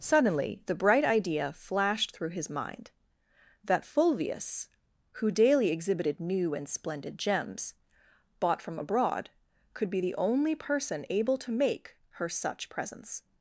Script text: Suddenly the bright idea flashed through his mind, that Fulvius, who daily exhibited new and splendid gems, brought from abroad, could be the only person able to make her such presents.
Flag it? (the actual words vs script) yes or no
yes